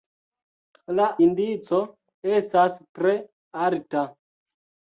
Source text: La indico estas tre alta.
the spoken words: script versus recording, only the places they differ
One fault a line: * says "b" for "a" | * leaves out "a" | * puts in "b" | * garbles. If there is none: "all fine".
all fine